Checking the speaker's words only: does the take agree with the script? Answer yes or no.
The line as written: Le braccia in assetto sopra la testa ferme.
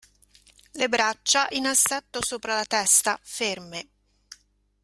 yes